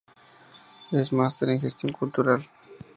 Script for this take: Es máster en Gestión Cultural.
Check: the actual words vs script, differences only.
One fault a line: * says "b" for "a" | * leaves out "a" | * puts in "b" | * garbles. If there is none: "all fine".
all fine